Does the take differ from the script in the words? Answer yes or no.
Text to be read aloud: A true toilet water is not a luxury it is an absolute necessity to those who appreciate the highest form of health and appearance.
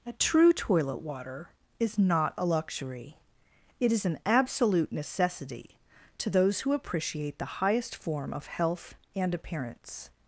no